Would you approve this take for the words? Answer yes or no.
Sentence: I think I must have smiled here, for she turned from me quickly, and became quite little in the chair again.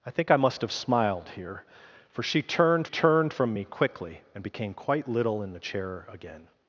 no